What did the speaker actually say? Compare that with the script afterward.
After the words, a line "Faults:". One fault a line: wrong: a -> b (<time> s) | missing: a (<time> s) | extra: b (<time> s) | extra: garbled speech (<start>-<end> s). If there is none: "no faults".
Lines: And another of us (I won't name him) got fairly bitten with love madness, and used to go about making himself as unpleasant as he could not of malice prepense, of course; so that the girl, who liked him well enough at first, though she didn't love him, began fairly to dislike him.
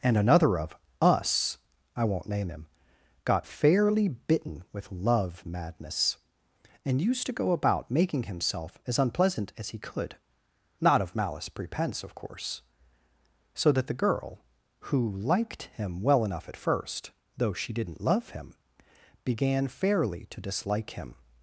And another of us (I won't name him) got fairly bitten with love madness, and used to go about making himself as unpleasant as he could not of malice prepense, of course; so that the girl, who liked him well enough at first, though she didn't love him, began fairly to dislike him.
Faults:
no faults